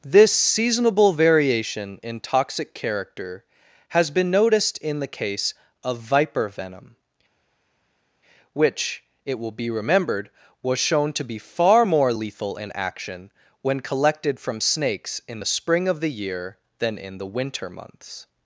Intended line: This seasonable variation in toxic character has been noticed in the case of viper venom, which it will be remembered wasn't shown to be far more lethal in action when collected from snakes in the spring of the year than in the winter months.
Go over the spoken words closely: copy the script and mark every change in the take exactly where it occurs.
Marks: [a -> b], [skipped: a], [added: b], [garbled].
This seasonable variation in toxic character has been noticed in the case of viper venom, which it will be remembered [wasn't -> was] shown to be far more lethal in action when collected from snakes in the spring of the year than in the winter months.